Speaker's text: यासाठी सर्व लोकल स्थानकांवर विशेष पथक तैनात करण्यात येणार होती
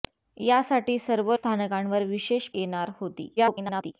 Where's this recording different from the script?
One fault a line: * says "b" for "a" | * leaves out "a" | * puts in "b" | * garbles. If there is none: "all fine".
* leaves out "लोकल"
* leaves out "पथक तैनात करण्यात"
* garbles